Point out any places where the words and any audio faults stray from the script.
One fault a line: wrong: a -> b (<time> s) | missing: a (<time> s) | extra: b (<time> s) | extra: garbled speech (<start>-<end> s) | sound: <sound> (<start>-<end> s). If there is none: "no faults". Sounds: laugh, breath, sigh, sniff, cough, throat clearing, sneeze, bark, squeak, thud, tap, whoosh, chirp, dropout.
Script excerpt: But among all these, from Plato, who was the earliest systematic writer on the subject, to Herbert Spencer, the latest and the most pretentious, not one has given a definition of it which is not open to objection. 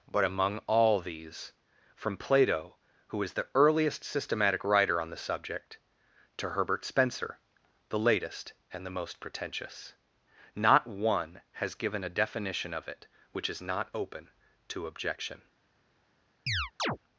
wrong: was -> is (3.2 s)
sound: chirp (16.5-17.0 s)